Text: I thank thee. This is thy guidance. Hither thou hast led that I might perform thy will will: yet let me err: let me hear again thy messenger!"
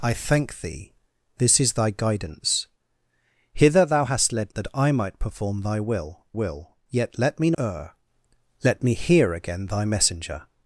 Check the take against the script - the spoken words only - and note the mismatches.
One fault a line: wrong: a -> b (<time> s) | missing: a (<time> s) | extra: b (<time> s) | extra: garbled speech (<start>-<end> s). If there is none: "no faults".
no faults